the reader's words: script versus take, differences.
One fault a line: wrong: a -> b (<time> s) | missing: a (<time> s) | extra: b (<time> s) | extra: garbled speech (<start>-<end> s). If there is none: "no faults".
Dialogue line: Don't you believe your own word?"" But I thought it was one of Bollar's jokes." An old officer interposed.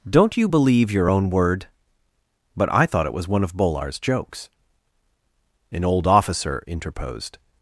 no faults